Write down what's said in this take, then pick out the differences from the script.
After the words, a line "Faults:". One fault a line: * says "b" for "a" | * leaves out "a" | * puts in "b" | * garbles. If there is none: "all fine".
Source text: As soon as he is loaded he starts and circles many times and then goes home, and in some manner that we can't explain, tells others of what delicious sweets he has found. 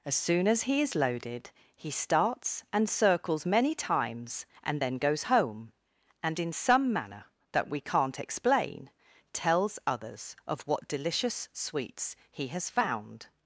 As soon as he is loaded he starts and circles many times and then goes home, and in some manner that we can't explain, tells others of what delicious sweets he has found.
Faults:
all fine